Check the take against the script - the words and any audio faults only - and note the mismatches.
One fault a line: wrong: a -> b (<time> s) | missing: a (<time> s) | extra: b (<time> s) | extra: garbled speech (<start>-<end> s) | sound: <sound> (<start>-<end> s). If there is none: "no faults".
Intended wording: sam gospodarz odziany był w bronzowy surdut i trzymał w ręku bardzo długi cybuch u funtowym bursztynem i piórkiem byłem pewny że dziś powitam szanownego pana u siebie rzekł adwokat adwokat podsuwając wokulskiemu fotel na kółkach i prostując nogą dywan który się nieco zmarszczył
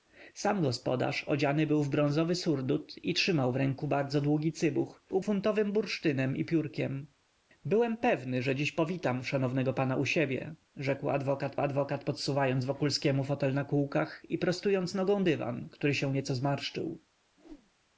sound: whoosh (17.4-17.7 s)